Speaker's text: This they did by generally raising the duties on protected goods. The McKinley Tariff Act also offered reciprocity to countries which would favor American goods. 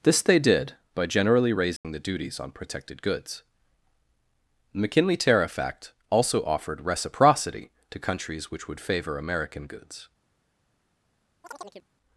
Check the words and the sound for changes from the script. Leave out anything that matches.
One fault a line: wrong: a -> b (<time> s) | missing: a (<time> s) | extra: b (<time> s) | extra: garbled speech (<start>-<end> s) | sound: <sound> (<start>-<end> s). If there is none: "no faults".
sound: dropout (1.8-1.8 s)
sound: chirp (11.4-11.9 s)